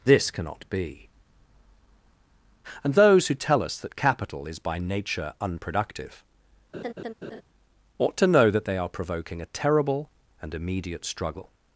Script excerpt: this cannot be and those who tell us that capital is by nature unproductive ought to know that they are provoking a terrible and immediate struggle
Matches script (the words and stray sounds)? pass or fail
fail